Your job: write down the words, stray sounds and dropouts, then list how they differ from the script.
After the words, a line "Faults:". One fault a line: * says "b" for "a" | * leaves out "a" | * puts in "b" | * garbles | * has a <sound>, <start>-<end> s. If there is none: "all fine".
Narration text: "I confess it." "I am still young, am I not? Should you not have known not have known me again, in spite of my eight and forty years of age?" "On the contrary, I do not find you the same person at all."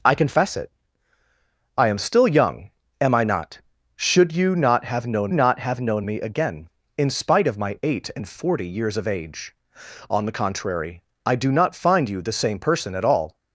"I confess it." "I am still young, am I not? Should you not have known not have known me again, in spite of my eight and forty years of age?" "On the contrary, I do not find you the same person at all."
Faults:
all fine